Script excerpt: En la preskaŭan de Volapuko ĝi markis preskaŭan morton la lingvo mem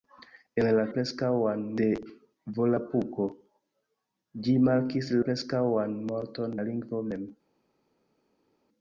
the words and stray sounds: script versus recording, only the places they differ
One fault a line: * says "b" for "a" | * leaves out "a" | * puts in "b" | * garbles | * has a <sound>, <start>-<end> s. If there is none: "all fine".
all fine